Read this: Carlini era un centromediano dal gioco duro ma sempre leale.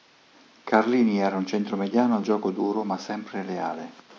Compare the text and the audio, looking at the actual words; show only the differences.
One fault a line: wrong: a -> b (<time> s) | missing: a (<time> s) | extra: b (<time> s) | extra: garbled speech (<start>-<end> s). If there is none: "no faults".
missing: dal (2.2 s)